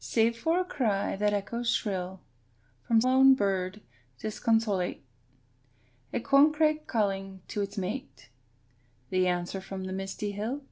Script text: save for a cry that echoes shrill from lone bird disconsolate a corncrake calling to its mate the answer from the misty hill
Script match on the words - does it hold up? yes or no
yes